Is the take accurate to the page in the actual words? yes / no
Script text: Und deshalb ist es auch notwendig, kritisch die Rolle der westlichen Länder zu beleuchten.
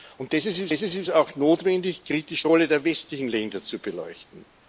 no